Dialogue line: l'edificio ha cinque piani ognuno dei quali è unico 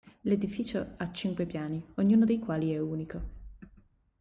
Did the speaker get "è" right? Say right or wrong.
right